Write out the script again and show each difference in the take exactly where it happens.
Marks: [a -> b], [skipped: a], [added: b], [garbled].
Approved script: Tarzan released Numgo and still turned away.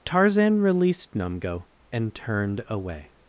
Tarzan released Numgo and [skipped: still] turned away.